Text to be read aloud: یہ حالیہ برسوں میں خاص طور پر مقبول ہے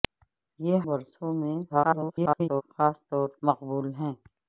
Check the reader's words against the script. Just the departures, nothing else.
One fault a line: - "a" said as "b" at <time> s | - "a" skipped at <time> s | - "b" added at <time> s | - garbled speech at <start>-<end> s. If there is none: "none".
- "حالیہ" skipped at 0.8 s
- garbled speech at 1.7-2.6 s
- "پر" skipped at 3.3 s